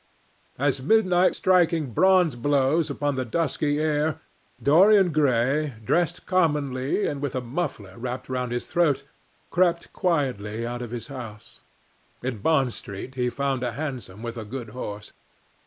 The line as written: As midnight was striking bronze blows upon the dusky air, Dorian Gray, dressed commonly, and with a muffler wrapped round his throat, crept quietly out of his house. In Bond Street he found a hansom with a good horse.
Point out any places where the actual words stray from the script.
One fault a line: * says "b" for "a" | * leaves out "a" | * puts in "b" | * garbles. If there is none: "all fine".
* leaves out "was"